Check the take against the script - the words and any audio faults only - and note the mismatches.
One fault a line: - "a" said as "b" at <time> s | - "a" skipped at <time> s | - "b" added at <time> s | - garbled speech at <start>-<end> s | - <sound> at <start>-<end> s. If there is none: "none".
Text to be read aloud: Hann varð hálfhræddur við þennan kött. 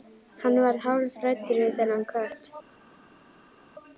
none